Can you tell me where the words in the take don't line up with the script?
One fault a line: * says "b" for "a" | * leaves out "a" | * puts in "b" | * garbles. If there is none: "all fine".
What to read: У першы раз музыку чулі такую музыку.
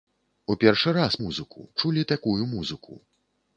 all fine